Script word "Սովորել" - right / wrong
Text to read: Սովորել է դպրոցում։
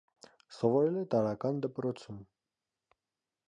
right